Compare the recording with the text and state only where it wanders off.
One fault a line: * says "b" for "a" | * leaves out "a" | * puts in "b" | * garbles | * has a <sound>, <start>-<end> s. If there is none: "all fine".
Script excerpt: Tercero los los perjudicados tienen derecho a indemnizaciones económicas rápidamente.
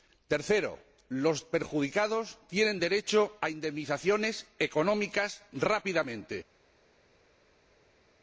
* leaves out "los"